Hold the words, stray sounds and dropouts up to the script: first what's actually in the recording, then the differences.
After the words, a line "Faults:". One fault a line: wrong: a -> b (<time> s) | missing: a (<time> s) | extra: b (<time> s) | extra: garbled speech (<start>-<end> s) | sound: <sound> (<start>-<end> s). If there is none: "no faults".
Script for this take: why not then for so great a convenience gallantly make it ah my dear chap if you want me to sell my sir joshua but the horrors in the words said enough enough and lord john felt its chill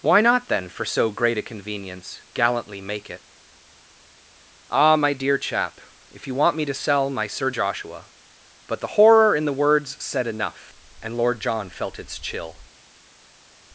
why not then for so great a convenience gallantly make it ah my dear chap if you want me to sell my sir joshua but the horror in the words said enough and lord john felt its chill
Faults:
wrong: horrors -> horror (9.0 s)
missing: enough (10.7 s)